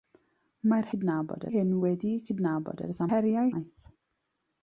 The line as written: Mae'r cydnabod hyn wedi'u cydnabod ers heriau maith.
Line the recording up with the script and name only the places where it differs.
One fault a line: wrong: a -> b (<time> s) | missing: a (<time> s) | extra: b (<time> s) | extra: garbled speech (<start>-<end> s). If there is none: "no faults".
no faults